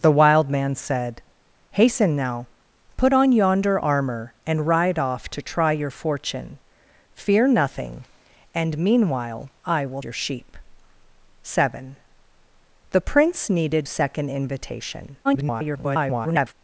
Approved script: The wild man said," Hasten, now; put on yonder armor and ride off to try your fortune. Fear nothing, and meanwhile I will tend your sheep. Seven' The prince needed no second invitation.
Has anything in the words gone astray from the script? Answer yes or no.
yes